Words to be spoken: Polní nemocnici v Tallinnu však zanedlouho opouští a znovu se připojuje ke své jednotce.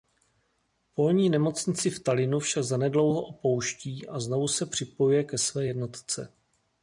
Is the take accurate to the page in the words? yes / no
yes